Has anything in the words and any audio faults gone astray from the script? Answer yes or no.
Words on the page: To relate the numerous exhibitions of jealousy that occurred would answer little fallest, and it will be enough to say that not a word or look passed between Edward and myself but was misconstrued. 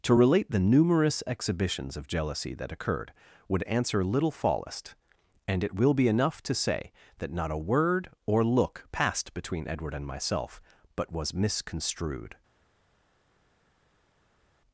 no